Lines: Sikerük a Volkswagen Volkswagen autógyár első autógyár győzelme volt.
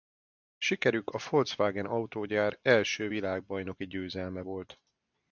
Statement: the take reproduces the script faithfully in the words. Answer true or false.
false